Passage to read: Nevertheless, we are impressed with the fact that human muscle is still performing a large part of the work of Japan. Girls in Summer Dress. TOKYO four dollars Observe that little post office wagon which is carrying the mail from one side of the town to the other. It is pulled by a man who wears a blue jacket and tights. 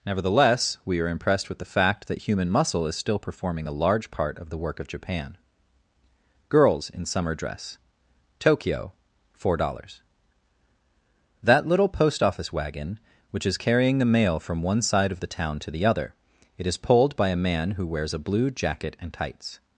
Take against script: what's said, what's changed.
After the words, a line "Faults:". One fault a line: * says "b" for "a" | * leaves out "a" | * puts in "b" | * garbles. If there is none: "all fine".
Nevertheless, we are impressed with the fact that human muscle is still performing a large part of the work of Japan. Girls in Summer Dress. TOKYO four dollars that little post office wagon which is carrying the mail from one side of the town to the other. It is pulled by a man who wears a blue jacket and tights.
Faults:
* leaves out "Observe"